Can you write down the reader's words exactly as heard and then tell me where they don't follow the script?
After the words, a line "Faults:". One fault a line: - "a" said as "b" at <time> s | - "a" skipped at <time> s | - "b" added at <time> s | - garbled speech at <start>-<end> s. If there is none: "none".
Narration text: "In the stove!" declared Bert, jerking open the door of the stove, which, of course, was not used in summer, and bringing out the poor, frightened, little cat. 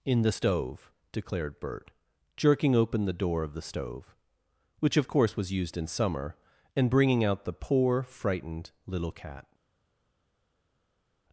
"In the stove!" declared Bert, jerking open the door of the stove, which, of course, was used in summer, and bringing out the poor, frightened, little cat.
Faults:
- "not" skipped at 5.5 s